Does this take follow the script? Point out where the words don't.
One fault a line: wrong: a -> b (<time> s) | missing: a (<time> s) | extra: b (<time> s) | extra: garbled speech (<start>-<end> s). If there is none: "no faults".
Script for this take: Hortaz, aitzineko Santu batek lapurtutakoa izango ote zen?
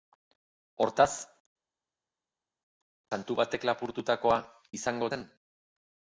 missing: aitzineko (1.1 s)
missing: ote (5.1 s)